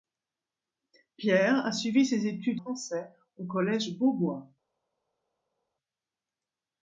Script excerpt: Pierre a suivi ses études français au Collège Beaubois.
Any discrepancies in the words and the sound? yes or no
no